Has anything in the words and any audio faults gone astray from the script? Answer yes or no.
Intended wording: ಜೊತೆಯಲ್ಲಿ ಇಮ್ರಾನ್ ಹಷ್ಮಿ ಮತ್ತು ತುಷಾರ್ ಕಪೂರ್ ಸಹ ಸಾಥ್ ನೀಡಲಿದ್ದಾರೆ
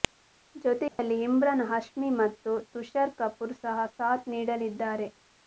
yes